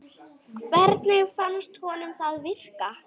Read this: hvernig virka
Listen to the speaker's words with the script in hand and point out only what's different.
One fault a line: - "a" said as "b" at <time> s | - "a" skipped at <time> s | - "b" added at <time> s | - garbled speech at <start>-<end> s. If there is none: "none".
- "fannst honum það" added at 1.4 s